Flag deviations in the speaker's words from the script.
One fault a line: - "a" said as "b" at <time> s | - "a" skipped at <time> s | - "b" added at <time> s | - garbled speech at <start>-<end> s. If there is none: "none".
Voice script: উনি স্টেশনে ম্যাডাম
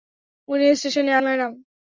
none